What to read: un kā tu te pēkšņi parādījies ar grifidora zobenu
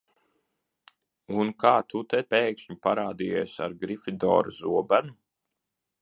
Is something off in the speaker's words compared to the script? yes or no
no